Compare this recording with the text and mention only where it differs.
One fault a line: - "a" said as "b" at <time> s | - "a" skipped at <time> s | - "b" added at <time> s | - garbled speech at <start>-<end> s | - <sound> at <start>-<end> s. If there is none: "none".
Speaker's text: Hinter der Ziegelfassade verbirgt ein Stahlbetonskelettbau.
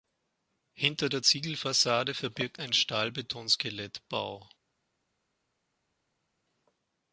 none